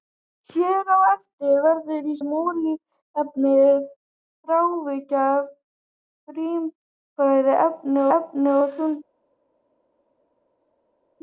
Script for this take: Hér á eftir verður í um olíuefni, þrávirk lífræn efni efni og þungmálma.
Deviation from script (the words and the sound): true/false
false